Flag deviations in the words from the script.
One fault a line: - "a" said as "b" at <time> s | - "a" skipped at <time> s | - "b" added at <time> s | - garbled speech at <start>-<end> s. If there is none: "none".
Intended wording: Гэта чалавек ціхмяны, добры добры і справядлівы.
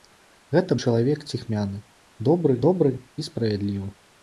none